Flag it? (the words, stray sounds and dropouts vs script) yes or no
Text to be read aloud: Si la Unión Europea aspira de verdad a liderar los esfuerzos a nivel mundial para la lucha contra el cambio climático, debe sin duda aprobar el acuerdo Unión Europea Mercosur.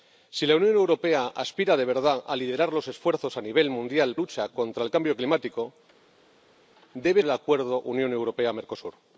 yes